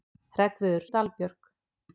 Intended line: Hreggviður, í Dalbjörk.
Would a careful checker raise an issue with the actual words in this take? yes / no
no